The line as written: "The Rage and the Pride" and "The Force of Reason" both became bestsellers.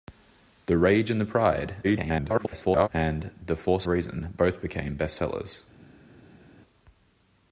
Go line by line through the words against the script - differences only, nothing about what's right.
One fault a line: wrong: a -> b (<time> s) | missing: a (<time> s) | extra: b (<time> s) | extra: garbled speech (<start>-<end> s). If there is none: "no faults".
extra: garbled speech (1.8-2.9 s)
missing: of (3.9 s)